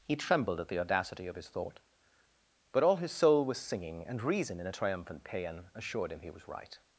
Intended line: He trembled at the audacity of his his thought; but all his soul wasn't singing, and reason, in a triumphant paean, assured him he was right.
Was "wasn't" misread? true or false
true